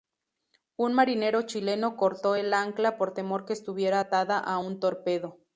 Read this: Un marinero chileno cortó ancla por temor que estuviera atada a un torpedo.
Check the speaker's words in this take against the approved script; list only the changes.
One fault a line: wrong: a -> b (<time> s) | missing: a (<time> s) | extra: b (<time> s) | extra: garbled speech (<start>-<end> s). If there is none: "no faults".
extra: el (2.3 s)